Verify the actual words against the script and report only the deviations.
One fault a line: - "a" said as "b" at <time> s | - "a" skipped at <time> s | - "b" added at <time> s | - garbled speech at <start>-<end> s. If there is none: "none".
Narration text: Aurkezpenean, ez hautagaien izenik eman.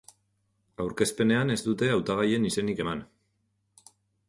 - "dute" added at 1.7 s